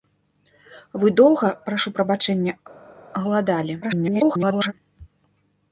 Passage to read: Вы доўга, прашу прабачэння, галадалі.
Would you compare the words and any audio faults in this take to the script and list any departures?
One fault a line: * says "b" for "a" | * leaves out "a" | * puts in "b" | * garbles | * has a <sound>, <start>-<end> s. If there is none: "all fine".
* garbles